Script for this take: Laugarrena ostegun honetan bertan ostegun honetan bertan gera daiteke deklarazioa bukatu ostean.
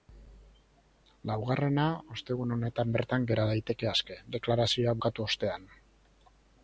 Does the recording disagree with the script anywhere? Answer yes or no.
yes